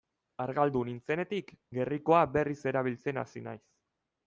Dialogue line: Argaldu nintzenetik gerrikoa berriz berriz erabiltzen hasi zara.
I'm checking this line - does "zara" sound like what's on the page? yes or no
no